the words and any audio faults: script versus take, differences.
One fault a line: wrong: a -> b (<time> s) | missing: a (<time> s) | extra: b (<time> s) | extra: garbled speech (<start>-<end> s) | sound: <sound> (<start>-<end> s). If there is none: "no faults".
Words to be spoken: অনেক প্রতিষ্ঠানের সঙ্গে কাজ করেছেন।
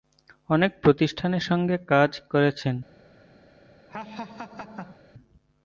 sound: laugh (3.9-5.0 s)